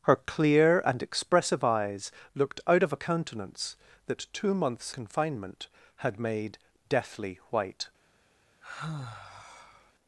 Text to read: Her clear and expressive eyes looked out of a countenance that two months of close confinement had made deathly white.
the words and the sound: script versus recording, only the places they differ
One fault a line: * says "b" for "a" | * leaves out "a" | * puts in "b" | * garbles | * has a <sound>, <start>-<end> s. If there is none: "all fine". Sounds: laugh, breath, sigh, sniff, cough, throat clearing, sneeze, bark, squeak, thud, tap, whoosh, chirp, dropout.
* leaves out "of close"
* has a sigh, 8.6-9.9 s